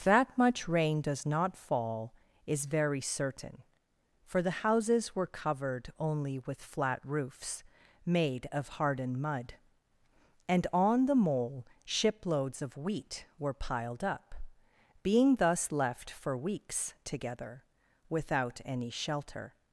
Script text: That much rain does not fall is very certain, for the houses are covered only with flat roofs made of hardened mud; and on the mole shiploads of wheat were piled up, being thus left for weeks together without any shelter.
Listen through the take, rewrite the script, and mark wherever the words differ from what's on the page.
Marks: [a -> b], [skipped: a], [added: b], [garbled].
That much rain does not fall is very certain, for the houses [are -> were] covered only with flat roofs made of hardened mud; and on the mole shiploads of wheat were piled up, being thus left for weeks together without any shelter.